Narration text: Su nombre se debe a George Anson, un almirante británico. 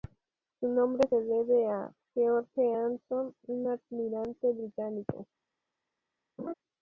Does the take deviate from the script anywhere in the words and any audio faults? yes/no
yes